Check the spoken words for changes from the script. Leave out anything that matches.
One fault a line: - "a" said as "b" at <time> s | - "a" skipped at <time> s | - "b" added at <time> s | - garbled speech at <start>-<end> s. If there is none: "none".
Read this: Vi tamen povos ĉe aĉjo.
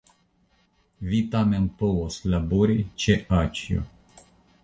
- "labori" added at 2.3 s